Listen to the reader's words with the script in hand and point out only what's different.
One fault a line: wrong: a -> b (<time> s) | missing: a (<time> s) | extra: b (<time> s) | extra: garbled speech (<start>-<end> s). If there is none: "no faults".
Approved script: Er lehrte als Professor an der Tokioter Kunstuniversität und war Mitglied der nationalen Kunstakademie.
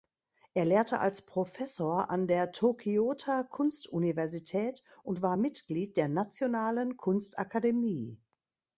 no faults